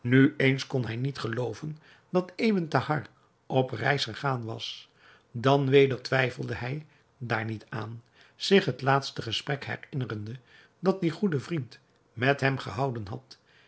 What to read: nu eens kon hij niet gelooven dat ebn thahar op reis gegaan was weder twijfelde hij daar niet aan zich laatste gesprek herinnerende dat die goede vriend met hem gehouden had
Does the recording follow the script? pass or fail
fail